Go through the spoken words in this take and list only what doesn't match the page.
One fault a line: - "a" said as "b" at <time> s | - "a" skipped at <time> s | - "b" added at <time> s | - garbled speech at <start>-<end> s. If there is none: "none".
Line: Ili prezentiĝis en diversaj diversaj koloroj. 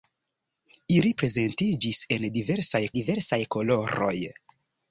none